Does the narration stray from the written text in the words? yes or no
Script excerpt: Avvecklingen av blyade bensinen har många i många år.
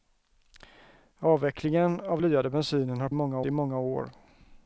no